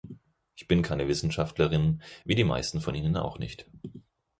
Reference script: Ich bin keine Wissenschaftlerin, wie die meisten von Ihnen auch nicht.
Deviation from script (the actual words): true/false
false